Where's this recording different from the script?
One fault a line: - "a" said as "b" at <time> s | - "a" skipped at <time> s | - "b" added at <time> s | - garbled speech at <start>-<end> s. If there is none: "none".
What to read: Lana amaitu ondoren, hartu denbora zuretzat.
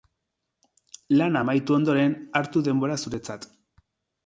none